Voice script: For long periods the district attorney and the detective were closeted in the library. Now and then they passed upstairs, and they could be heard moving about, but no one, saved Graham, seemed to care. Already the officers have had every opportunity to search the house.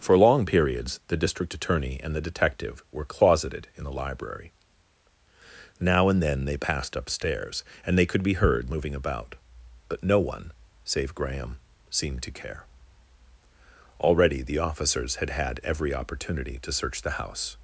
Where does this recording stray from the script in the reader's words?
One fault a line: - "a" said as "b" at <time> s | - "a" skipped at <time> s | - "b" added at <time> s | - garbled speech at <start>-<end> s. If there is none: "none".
- "saved" said as "save" at 10.9 s
- "have" said as "had" at 15.2 s